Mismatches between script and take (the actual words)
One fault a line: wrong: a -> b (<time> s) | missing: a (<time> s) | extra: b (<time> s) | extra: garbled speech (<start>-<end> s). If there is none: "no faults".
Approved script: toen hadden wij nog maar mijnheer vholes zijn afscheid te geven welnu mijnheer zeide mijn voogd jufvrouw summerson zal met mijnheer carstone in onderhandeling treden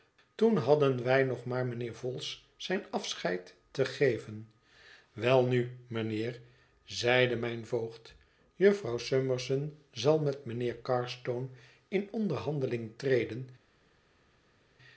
no faults